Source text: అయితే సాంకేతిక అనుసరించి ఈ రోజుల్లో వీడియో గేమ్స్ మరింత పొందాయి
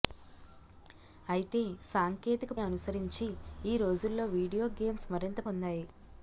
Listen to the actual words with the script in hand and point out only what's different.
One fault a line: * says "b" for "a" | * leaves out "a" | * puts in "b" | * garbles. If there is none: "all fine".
all fine